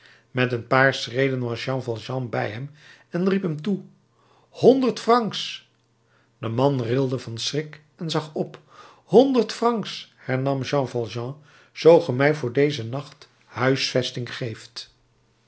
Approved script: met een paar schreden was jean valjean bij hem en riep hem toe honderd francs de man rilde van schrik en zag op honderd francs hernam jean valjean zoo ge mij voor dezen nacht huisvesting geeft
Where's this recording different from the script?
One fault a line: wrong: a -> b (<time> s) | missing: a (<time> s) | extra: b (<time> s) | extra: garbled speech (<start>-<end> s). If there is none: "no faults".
no faults